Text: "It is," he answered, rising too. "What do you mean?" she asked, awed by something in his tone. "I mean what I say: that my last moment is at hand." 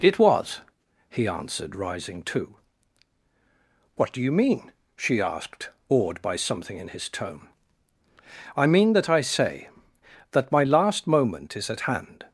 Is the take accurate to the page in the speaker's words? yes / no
no